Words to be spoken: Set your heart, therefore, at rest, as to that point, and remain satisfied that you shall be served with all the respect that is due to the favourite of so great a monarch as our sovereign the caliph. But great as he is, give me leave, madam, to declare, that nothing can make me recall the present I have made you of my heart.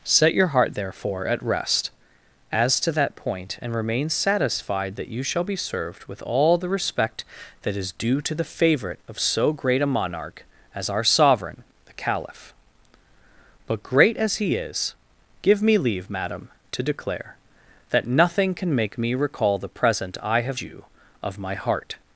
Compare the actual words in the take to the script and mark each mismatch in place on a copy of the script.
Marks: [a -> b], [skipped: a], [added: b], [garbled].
Set your heart, therefore, at rest, as to that point, and remain satisfied that you shall be served with all the respect that is due to the favourite of so great a monarch as our sovereign the caliph. But great as he is, give me leave, madam, to declare, that nothing can make me recall the present I have [skipped: made] you of my heart.